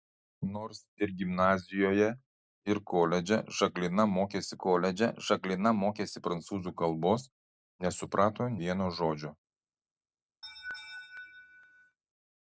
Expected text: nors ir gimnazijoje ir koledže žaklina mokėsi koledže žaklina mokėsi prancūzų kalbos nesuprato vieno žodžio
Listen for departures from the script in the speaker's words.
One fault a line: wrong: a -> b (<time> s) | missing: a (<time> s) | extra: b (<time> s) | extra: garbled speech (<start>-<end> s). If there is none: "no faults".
no faults